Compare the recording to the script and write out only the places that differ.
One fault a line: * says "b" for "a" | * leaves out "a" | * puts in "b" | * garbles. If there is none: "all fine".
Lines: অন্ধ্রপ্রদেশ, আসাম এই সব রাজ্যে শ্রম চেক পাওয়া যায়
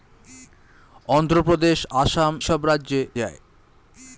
* leaves out "এই"
* leaves out "শ্রম চেক পাওয়া"